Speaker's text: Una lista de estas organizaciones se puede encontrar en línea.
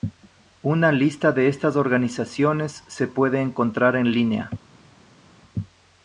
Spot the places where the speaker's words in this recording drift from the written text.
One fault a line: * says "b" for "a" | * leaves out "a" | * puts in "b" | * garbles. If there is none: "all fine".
all fine